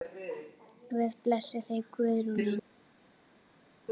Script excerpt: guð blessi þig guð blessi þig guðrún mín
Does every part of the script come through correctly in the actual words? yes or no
no